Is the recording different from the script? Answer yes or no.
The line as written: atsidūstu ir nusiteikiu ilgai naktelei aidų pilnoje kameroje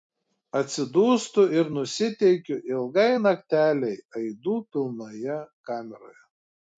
no